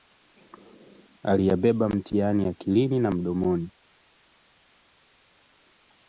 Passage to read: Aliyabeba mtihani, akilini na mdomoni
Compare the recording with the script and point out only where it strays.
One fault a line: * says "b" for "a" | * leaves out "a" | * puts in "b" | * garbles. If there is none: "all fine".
all fine